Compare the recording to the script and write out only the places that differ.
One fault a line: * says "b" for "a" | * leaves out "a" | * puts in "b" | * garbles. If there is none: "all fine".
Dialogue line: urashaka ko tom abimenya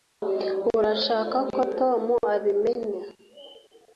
all fine